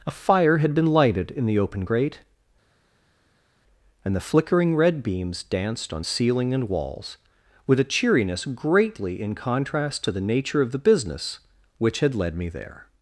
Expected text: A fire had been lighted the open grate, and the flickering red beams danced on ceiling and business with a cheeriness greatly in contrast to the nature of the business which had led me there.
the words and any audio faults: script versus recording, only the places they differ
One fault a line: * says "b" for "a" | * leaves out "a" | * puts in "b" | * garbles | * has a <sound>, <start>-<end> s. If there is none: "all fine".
* puts in "in"
* says "walls" for "business"